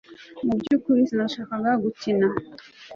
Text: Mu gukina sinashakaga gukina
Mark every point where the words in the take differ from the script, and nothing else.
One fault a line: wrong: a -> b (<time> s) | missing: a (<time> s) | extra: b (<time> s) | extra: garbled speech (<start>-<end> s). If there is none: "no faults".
wrong: gukina -> byukuri (0.6 s)